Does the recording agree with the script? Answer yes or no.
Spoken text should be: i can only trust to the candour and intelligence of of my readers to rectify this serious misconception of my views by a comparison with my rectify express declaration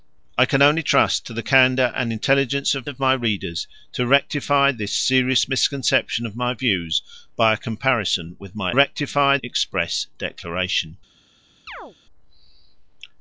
yes